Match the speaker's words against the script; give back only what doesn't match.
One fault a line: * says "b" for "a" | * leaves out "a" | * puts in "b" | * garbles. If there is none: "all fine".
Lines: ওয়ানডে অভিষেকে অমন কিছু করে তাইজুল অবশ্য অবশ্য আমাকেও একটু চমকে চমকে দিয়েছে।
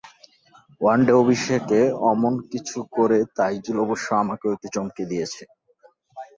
* leaves out "অবশ্য"
* leaves out "চমকে"